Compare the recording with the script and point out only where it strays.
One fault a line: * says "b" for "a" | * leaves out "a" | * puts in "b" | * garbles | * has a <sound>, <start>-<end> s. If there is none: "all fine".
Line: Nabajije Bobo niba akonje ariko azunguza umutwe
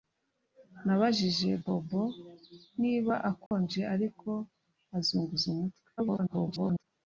* has a dropout, 3.5-3.5 s
* garbles